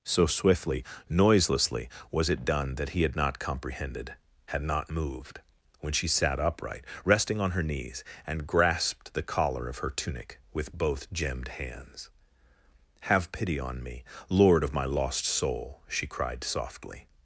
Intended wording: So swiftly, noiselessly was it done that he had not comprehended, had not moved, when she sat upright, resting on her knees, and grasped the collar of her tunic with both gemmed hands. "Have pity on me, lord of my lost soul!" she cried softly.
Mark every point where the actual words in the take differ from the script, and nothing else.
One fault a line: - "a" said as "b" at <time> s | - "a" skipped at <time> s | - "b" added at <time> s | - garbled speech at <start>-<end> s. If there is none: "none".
none